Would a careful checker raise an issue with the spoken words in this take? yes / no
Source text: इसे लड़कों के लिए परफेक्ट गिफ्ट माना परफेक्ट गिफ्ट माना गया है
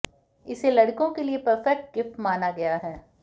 yes